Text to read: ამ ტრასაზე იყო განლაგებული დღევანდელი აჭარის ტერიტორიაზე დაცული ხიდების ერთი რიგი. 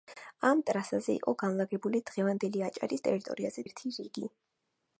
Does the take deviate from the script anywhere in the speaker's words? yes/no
yes